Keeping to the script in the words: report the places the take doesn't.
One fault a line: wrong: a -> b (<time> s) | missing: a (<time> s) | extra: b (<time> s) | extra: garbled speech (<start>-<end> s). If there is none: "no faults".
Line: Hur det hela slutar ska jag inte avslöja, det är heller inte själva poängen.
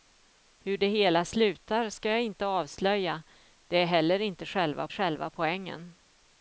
extra: själva (4.9 s)